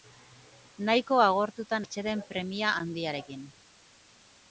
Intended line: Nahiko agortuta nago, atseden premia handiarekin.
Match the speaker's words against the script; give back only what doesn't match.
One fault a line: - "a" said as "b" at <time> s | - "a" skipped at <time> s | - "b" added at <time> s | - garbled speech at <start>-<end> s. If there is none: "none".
- "nago" skipped at 1.8 s